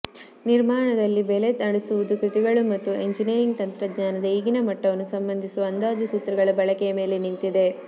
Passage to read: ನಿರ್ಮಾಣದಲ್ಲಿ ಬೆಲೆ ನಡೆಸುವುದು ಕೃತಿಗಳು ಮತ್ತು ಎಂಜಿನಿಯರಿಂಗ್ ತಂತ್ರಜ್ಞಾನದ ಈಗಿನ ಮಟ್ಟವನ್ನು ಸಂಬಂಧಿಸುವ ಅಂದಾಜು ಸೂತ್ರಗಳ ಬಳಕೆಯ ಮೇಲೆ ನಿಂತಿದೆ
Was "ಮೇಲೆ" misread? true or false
false